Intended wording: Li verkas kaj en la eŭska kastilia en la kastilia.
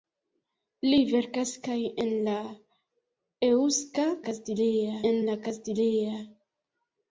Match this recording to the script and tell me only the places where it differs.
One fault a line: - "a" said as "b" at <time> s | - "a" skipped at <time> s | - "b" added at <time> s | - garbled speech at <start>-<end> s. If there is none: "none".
none